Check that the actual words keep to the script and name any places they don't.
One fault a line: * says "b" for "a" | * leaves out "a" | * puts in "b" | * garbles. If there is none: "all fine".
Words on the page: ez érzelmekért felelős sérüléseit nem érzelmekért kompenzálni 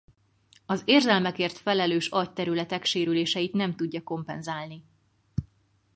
* says "az" for "ez"
* puts in "agyterületek"
* says "tudja" for "érzelmekért"